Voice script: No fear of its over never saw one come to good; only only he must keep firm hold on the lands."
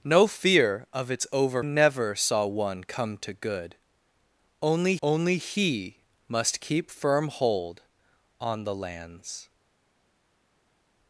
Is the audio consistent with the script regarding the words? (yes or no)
yes